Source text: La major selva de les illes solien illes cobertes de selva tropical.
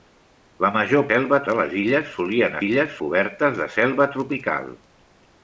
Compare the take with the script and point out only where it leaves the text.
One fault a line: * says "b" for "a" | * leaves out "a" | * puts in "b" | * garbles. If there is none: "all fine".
all fine